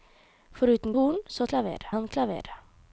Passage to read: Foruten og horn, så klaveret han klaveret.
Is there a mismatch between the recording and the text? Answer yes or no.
no